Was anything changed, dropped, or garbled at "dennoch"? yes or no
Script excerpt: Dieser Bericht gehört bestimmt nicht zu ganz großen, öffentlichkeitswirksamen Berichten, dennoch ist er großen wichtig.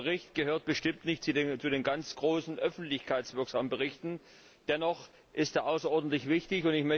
no